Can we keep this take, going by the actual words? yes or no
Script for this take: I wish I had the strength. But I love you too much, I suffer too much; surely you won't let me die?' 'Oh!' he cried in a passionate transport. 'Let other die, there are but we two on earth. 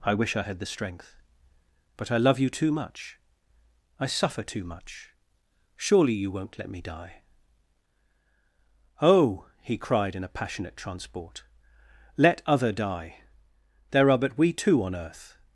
yes